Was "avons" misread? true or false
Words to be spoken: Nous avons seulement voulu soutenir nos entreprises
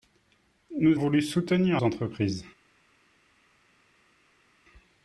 true